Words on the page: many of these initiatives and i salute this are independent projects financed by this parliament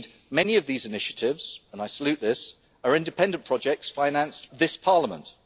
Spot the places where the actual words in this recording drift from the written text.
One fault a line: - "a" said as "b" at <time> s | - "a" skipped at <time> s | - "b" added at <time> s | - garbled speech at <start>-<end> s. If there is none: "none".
- "by" skipped at 4.5 s